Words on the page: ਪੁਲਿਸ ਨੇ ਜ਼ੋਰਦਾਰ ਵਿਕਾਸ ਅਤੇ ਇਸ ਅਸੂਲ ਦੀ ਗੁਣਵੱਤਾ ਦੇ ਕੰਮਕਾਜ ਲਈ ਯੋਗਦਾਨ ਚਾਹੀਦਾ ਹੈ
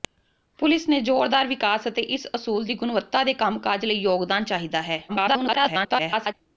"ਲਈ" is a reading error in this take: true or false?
false